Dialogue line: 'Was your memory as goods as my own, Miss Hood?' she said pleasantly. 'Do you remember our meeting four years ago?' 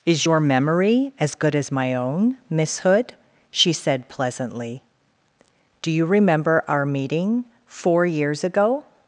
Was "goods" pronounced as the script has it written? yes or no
no